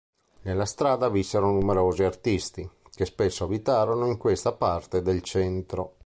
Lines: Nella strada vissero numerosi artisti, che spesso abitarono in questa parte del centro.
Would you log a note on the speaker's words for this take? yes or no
no